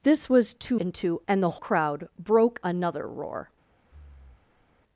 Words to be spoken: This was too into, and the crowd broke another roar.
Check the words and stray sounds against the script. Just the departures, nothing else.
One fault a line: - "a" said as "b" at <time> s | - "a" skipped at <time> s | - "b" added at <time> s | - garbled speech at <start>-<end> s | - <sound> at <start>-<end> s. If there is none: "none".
- breath at 3.8-4.8 s